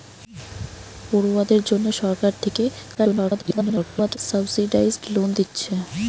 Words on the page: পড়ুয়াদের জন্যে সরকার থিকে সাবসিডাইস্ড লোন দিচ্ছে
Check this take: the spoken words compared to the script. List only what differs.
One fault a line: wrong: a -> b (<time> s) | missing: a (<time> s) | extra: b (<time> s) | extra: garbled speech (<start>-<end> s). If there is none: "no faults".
extra: garbled speech (2.9-4.2 s)